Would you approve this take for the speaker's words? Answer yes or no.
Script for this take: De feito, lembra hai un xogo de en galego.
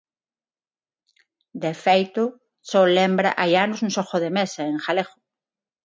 no